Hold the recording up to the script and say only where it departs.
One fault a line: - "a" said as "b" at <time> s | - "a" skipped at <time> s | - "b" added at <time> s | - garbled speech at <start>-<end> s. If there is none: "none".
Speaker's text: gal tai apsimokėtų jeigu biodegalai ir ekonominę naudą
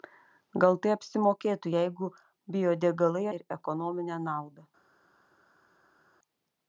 none